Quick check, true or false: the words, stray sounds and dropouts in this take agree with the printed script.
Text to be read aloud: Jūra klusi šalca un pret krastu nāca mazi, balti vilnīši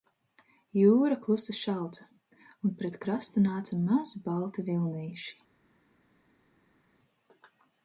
true